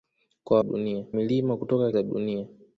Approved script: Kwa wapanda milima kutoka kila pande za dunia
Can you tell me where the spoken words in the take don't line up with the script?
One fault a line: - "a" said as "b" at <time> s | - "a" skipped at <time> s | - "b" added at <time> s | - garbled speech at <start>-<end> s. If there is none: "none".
- "wapanda" said as "dunia" at 0.6 s
- "kila pande" skipped at 1.9 s